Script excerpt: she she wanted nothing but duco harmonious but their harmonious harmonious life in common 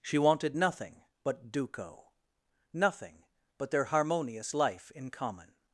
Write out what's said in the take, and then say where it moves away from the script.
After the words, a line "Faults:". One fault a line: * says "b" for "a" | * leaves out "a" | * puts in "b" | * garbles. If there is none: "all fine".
she wanted nothing but duco nothing but their harmonious life in common
Faults:
* leaves out "she"
* says "nothing" for "harmonious"
* leaves out "harmonious"